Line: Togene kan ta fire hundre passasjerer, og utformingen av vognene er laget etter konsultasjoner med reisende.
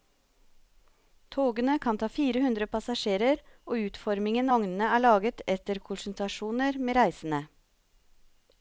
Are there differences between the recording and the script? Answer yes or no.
yes